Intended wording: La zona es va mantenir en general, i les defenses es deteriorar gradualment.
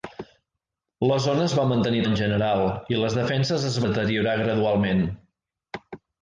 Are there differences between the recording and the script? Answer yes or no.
no